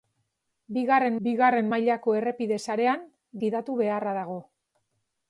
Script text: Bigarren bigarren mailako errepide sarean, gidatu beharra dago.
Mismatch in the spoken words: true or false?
false